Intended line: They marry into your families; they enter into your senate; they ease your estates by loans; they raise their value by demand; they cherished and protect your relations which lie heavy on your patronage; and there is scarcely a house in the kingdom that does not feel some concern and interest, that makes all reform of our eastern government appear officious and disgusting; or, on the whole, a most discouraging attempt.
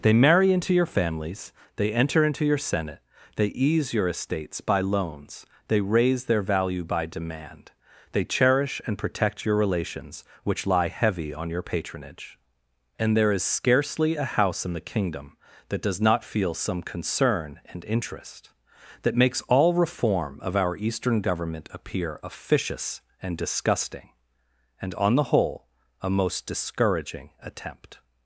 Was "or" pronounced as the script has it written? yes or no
no